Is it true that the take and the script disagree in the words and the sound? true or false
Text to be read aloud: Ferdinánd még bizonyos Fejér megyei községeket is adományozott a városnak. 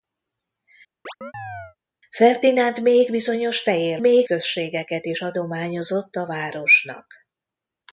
true